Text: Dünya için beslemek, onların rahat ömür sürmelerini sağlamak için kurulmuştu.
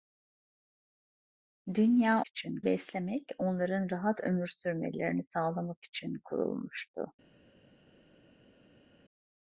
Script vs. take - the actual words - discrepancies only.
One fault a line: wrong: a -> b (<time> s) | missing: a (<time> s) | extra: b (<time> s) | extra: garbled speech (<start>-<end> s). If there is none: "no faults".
no faults